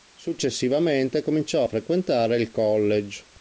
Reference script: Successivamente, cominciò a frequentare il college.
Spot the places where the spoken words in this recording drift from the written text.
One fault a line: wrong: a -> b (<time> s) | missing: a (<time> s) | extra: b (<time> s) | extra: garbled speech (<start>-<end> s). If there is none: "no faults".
no faults